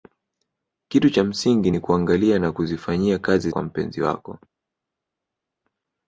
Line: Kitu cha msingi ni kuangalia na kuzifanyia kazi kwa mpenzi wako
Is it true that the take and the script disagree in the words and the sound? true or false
false